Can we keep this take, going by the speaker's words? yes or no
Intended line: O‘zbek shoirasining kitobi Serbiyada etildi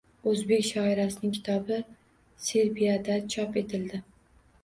no